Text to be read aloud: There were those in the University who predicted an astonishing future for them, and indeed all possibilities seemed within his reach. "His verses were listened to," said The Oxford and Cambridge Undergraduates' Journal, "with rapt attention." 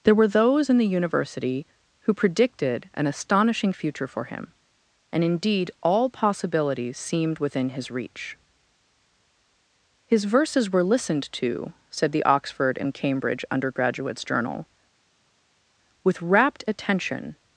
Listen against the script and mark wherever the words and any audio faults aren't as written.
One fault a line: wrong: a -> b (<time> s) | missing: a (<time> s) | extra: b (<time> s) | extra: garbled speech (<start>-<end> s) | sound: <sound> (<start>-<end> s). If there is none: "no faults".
wrong: them -> him (4.2 s)